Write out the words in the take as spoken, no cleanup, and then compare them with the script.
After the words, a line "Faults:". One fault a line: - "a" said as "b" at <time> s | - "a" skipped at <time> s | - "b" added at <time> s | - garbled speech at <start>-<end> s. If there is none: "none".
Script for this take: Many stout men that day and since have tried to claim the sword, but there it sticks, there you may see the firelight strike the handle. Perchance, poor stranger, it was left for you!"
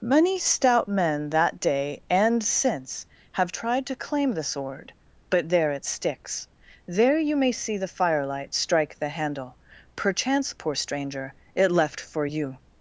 Many stout men that day and since have tried to claim the sword, but there it sticks, there you may see the firelight strike the handle. Perchance, poor stranger, it left for you!"
Faults:
- "was" skipped at 11.7 s